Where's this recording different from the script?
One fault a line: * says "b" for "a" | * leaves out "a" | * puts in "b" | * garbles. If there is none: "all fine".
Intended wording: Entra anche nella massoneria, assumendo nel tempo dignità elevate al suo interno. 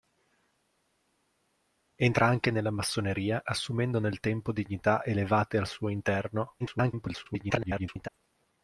* garbles